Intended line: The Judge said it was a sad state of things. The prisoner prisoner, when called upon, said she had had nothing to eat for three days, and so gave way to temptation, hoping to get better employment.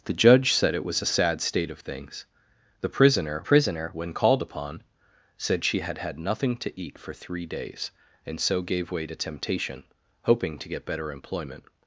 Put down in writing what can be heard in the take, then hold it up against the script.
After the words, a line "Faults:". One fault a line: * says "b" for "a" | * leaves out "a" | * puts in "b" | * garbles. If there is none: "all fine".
The Judge said it was a sad state of things. The prisoner prisoner, when called upon, said she had had nothing to eat for three days, and so gave way to temptation, hoping to get better employment.
Faults:
all fine